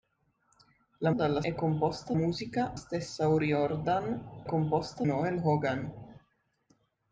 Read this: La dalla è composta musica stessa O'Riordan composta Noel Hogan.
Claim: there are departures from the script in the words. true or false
false